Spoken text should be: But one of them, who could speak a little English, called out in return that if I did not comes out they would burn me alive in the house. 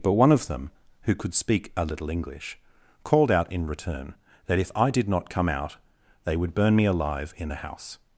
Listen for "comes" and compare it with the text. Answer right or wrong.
wrong